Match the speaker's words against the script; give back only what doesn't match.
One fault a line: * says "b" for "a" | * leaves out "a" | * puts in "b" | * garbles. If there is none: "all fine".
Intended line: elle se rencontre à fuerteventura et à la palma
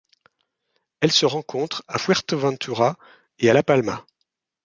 all fine